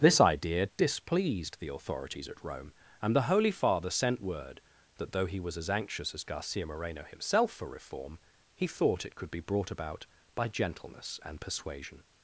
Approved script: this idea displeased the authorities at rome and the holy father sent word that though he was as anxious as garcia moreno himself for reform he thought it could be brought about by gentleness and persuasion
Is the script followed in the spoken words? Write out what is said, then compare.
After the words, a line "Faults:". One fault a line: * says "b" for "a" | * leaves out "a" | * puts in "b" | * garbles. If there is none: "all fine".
this idea displeased the authorities at rome and the holy father sent word that though he was as anxious as garcia moreno himself for reform he thought it could be brought about by gentleness and persuasion
Faults:
all fine